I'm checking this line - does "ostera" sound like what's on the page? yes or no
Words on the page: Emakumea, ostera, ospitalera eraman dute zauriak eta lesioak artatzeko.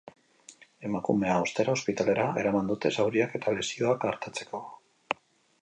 yes